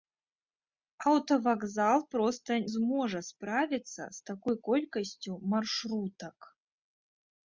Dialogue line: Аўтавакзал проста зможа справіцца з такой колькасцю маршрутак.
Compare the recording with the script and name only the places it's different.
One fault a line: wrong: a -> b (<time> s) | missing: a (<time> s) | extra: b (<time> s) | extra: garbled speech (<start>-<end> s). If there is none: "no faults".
no faults